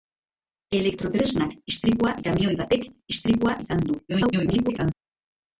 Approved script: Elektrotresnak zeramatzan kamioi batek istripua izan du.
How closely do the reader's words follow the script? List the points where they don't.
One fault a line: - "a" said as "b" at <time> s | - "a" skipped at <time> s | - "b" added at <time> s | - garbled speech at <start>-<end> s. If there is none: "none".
- "zeramatzan" said as "istripua" at 1.7 s
- garbled speech at 4.1-4.9 s